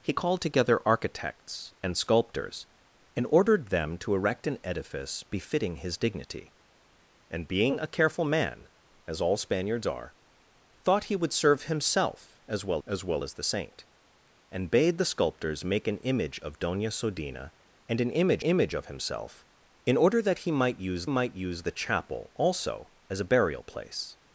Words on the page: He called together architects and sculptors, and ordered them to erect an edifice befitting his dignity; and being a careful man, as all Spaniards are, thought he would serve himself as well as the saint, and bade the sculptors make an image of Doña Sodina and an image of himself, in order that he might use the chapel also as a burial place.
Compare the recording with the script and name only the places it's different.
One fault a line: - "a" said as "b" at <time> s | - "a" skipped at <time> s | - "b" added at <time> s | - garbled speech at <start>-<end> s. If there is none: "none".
- "well as" added at 13.0 s
- "image" added at 18.4 s
- "might use" added at 21.1 s